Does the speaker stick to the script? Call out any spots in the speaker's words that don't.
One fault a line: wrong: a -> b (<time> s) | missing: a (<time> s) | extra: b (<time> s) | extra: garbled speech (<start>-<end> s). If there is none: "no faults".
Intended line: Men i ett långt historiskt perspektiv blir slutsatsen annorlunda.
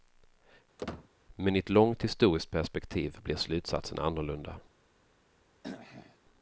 no faults